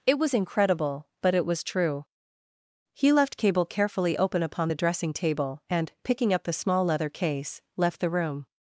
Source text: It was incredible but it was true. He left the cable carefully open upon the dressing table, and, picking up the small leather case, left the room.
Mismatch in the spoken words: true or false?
true